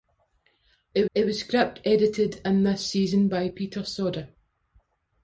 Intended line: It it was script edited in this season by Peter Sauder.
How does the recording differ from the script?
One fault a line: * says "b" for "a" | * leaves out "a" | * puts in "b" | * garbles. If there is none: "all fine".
all fine